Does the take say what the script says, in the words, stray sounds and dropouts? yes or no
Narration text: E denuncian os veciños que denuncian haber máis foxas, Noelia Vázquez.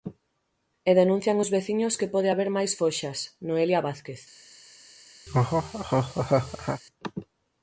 no